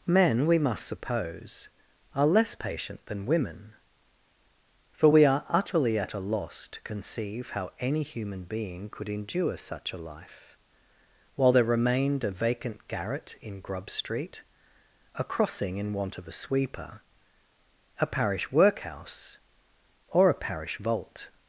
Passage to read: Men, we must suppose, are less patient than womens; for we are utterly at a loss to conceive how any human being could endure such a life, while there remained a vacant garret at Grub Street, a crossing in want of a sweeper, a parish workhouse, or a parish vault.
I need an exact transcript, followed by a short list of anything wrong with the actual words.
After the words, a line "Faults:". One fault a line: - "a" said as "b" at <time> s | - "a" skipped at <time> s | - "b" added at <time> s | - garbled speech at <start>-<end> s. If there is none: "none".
Men, we must suppose, are less patient than women; for we are utterly at a loss to conceive how any human being could endure such a life, while there remained a vacant garret in Grub Street, a crossing in want of a sweeper, a parish workhouse, or a parish vault.
Faults:
- "womens" said as "women" at 3.3 s
- "at" said as "in" at 13.4 s